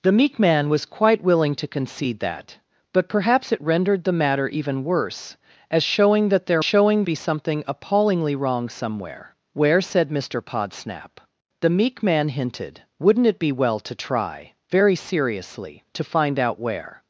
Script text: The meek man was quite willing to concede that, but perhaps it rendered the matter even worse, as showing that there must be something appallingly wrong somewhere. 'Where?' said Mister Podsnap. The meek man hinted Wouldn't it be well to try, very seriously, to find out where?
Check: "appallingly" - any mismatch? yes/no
no